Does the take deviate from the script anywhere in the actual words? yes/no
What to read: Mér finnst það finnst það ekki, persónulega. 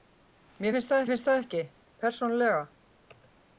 no